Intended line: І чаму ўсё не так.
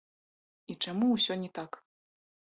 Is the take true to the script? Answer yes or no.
yes